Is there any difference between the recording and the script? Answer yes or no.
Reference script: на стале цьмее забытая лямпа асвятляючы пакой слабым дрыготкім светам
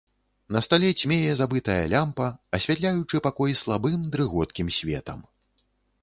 no